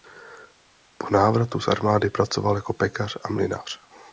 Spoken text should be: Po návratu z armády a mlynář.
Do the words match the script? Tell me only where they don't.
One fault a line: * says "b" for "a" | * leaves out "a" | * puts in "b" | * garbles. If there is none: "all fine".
* puts in "pracoval jako pekař"